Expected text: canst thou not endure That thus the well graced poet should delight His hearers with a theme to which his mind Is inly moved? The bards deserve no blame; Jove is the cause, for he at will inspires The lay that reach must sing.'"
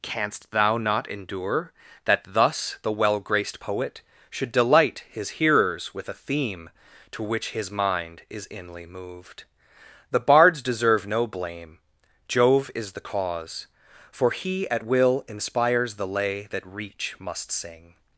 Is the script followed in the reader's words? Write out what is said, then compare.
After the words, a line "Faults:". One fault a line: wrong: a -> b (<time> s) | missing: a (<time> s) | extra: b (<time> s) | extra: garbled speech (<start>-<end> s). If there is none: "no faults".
canst thou not endure That thus the well graced poet should delight His hearers with a theme to which his mind Is inly moved? The bards deserve no blame; Jove is the cause, for he at will inspires The lay that reach must sing.'"
Faults:
no faults